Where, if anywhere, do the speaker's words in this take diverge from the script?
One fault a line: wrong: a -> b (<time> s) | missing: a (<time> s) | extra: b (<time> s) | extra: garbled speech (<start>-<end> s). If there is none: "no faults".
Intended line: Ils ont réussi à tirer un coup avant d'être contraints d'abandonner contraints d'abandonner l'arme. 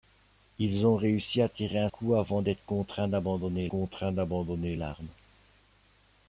no faults